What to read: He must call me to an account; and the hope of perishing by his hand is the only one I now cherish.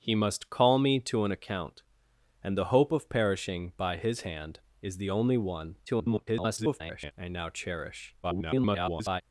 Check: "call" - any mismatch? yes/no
no